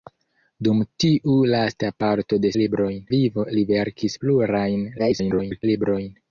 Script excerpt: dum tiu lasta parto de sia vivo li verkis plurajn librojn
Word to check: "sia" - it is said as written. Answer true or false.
false